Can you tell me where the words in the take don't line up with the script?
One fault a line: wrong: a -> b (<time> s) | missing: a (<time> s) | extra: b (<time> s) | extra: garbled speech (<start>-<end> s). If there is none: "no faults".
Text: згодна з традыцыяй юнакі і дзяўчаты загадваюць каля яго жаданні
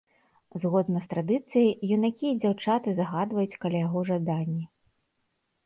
no faults